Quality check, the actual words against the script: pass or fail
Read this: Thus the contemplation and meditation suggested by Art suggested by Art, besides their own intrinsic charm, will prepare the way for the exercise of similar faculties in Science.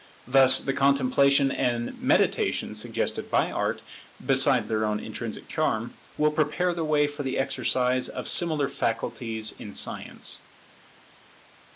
fail